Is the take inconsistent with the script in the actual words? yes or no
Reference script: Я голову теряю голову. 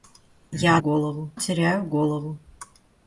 no